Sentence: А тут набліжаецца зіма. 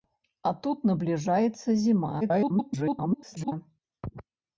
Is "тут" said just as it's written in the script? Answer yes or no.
yes